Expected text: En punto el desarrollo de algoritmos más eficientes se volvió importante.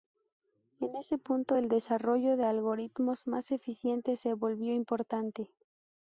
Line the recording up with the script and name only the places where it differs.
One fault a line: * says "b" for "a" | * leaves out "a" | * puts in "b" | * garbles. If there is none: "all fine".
* puts in "ese"